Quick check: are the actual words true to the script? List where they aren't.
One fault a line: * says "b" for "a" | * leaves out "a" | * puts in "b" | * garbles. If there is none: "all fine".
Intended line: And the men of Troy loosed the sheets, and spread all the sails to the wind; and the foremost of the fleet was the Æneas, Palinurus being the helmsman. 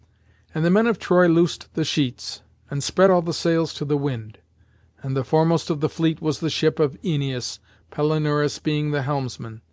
* puts in "ship of"